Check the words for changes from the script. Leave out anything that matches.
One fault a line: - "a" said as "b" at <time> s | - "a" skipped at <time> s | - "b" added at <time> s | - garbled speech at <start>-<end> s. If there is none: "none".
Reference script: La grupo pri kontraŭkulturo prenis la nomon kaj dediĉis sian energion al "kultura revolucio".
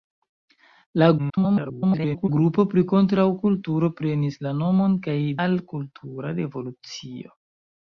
- garbled speech at 1.2-2.3 s
- "dediĉis sian energion" skipped at 5.2 s